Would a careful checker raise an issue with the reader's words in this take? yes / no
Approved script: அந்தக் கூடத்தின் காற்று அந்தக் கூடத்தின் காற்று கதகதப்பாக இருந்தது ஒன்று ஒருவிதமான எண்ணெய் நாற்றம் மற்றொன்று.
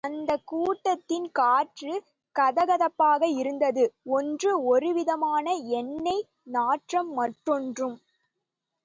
yes